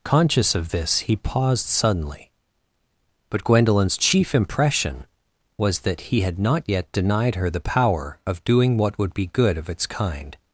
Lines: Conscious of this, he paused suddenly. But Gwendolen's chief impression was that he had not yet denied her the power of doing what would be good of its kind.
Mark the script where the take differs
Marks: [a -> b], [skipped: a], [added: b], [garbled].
Conscious of this, he paused suddenly. But Gwendolen's chief impression was that he had not yet denied her the power of doing what would be good of its kind.